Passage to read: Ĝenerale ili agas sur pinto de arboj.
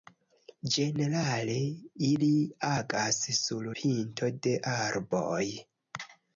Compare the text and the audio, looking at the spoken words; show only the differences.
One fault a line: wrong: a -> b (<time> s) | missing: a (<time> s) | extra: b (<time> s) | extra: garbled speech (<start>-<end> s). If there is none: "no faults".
no faults